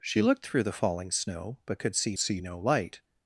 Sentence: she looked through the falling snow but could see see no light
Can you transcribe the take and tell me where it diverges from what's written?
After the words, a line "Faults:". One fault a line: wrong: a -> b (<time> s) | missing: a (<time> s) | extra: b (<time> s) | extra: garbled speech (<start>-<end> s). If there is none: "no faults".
she looked through the falling snow but could see see no light
Faults:
no faults